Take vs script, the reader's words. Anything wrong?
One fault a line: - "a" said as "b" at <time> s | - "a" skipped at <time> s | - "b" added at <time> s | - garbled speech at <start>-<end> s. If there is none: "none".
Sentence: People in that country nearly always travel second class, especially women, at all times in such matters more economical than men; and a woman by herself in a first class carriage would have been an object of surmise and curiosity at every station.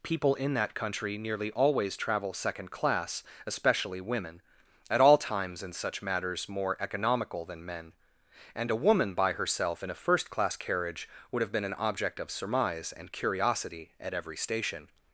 none